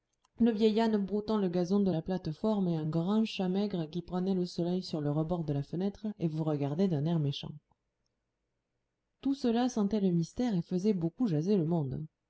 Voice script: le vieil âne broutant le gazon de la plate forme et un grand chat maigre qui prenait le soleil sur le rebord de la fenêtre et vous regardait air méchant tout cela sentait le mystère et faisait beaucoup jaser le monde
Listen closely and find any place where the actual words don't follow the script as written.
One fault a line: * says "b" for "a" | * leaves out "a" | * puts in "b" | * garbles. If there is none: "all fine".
* puts in "d'un"